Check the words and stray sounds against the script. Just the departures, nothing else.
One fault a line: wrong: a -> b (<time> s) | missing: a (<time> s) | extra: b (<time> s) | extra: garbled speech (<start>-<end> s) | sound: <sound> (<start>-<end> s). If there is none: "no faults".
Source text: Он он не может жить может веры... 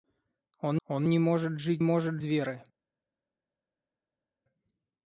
no faults